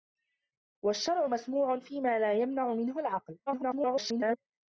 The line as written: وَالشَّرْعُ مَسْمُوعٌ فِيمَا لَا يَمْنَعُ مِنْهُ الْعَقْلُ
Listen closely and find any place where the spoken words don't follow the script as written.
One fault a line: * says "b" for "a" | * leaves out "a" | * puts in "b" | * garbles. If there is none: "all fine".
* garbles